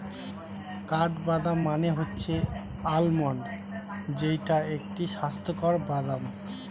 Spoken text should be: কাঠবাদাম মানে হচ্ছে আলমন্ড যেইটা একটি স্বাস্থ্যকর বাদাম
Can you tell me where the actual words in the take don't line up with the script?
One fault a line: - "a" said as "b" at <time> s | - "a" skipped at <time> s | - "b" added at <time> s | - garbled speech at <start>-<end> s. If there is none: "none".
none